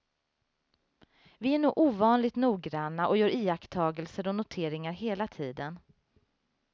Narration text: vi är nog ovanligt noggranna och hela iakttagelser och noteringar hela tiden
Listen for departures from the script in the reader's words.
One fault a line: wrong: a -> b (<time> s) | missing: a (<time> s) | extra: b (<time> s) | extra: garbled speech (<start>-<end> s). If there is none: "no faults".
wrong: hela -> gör (3.2 s)